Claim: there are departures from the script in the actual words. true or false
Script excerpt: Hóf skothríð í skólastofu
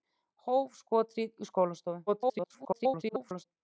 true